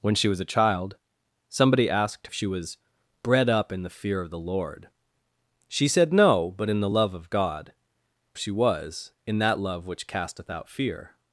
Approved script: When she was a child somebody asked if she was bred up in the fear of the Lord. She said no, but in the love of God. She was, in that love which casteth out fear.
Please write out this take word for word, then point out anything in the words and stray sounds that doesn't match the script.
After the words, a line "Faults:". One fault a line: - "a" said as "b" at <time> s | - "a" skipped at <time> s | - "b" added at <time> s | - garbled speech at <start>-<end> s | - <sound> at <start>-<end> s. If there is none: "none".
When she was a child somebody asked if she was bred up in the fear of the Lord. She said no, but in the love of God. She was, in that love which casteth out fear.
Faults:
none